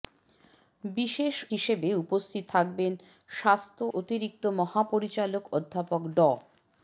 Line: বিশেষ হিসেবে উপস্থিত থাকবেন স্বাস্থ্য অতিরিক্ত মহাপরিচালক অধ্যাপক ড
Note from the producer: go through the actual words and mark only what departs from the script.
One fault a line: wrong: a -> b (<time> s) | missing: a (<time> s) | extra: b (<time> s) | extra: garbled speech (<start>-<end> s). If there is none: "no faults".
no faults